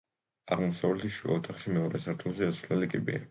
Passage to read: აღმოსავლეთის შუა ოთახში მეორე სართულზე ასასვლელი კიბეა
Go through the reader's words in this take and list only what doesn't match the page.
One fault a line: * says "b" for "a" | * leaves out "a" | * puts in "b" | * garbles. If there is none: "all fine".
all fine